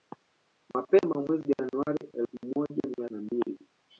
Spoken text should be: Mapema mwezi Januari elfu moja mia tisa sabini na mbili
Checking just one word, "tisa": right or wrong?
wrong